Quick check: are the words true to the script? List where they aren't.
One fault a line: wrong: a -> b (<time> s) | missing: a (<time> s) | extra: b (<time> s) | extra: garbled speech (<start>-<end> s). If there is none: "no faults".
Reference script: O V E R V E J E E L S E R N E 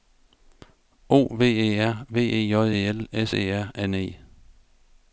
missing: E (2.9 s)